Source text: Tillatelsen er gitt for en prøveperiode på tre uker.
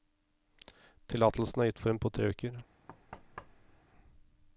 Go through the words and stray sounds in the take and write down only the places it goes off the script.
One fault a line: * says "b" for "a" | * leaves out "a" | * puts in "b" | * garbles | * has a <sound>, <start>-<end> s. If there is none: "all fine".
* leaves out "prøveperiode"
* has a thud, 2.9-3.8 s